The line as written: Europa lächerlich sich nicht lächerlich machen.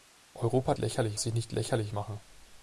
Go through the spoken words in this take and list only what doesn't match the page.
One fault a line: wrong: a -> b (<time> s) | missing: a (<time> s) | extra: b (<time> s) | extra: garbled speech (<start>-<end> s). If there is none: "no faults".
no faults